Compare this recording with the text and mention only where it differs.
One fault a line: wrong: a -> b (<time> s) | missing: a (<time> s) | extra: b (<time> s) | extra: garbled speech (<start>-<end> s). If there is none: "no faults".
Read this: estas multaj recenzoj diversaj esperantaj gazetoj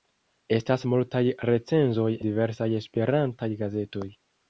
no faults